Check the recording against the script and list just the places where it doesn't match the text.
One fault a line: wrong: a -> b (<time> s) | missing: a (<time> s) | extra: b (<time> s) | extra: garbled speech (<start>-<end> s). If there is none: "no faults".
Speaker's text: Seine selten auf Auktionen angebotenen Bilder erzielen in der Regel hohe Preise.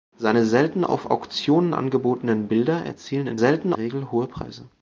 wrong: der -> selten (3.3 s)